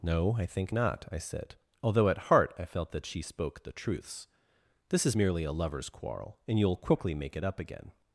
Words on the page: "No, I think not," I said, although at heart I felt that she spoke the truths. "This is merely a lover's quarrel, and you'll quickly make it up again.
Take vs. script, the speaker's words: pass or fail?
pass